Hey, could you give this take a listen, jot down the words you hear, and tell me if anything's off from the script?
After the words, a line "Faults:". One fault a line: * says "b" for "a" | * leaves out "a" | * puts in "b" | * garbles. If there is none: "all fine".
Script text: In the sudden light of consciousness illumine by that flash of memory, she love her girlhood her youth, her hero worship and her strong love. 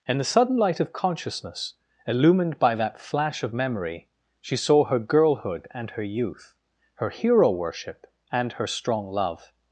In the sudden light of consciousness illumined by that flash of memory, she saw her girlhood and her youth, her hero worship and her strong love.
Faults:
* says "illumined" for "illumine"
* says "saw" for "love"
* puts in "and"